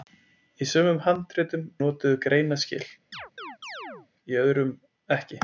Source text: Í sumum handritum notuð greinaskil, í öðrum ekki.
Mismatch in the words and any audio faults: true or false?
true